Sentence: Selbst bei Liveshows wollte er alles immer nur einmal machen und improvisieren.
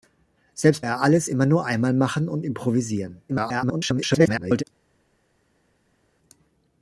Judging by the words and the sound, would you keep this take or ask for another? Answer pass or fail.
fail